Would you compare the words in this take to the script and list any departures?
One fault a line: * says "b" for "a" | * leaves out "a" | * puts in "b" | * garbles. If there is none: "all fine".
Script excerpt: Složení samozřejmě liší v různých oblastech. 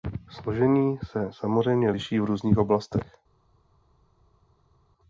* puts in "se"